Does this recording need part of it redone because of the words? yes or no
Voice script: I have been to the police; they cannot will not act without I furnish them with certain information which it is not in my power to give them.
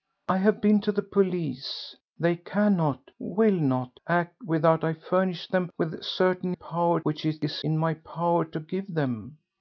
yes